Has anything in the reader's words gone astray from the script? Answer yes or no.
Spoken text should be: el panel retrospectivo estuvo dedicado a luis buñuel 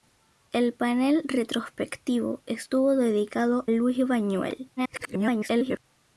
yes